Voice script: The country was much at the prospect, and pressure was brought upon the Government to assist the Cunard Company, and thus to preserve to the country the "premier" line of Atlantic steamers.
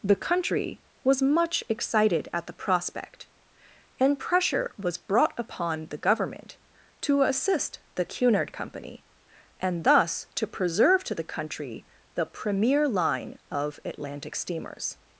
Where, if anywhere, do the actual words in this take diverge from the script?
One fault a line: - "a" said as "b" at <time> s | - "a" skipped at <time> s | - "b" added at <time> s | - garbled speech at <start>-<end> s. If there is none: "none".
- "excited" added at 1.7 s